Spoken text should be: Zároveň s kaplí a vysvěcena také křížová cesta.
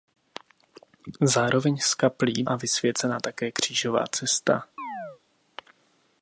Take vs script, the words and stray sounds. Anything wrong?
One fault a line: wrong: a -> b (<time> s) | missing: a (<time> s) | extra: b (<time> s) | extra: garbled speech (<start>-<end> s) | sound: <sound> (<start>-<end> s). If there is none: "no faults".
sound: chirp (4.8-5.2 s)